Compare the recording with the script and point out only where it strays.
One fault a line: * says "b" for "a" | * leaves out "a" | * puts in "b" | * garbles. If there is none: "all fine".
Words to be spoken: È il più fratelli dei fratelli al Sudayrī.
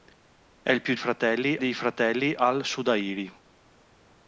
all fine